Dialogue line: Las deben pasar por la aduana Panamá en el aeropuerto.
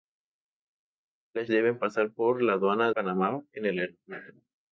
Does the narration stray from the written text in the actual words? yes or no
no